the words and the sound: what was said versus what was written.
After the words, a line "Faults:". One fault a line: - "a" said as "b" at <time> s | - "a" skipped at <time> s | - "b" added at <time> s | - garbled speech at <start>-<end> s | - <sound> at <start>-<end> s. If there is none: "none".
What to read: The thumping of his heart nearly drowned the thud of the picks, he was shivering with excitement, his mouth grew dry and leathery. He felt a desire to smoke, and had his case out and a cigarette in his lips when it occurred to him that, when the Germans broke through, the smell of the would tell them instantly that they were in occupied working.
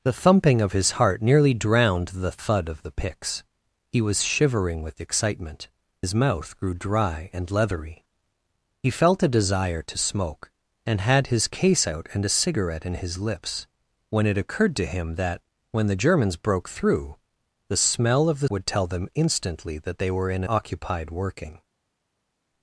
The thumping of his heart nearly drowned the thud of the picks, he was shivering with excitement, his mouth grew dry and leathery. He felt a desire to smoke, and had his case out and a cigarette in his lips when it occurred to him that, when the Germans broke through, the smell of the would tell them instantly that they were in occupied working.
Faults:
none